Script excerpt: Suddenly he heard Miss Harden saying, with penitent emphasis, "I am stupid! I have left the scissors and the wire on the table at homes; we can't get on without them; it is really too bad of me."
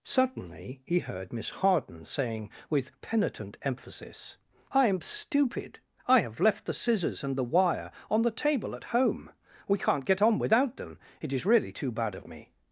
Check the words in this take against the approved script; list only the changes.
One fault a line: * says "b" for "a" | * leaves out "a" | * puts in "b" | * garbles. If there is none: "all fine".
* says "home" for "homes"